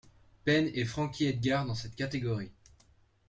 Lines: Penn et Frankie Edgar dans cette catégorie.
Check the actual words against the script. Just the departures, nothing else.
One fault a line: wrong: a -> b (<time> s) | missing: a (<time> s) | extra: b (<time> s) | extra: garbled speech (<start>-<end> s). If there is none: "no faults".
no faults